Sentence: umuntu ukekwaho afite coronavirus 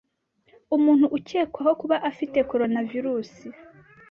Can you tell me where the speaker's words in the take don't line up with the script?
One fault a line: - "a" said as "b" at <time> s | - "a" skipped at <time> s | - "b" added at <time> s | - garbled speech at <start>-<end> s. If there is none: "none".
- "kuba" added at 1.8 s